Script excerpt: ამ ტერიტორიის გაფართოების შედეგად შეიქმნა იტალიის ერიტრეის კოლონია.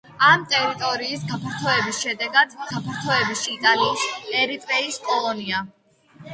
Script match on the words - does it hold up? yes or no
no